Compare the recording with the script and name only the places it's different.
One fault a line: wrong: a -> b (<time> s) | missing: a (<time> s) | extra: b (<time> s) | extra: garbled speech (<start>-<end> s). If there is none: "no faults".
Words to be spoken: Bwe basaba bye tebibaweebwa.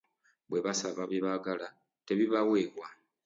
extra: baagala (1.2 s)